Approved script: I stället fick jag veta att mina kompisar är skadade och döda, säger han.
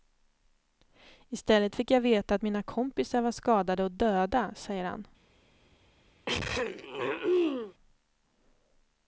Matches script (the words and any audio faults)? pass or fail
fail